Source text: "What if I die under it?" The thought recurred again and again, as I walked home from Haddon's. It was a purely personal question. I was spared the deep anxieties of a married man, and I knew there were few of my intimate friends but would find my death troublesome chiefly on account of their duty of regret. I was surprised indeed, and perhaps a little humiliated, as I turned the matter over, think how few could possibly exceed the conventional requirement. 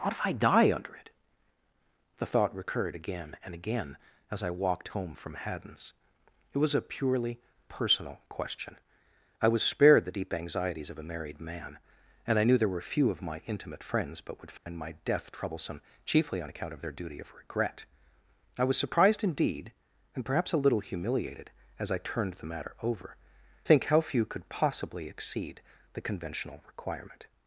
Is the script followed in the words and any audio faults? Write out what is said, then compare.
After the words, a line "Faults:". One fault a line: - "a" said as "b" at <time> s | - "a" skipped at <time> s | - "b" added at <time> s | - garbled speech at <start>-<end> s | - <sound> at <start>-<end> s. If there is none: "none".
"What if I die under it?" The thought recurred again and again, as I walked home from Haddon's. It was a purely personal question. I was spared the deep anxieties of a married man, and I knew there were few of my intimate friends but would find my death troublesome chiefly on account of their duty of regret. I was surprised indeed, and perhaps a little humiliated, as I turned the matter over, think how few could possibly exceed the conventional requirement.
Faults:
- dropout at 14.6-14.7 s